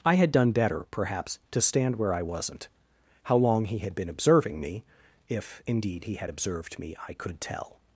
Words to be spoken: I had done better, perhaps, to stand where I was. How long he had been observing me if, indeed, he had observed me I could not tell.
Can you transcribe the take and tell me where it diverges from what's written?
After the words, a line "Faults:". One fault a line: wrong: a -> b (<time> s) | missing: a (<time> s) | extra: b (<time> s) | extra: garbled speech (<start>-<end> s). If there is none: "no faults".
I had done better, perhaps, to stand where I wasn't. How long he had been observing me if, indeed, he had observed me I could tell.
Faults:
wrong: was -> wasn't (2.2 s)
missing: not (7.4 s)